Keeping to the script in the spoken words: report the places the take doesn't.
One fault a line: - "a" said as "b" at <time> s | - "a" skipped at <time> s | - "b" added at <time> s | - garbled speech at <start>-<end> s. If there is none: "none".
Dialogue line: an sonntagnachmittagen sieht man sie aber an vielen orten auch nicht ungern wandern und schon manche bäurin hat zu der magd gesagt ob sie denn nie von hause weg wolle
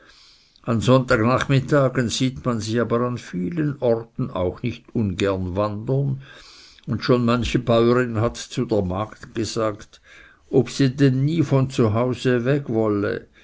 none